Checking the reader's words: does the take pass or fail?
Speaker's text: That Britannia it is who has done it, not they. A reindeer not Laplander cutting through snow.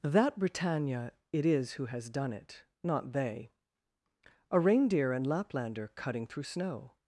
fail